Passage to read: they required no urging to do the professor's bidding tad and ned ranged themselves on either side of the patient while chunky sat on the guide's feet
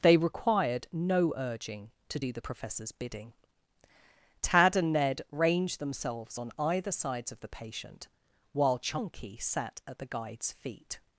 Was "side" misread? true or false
true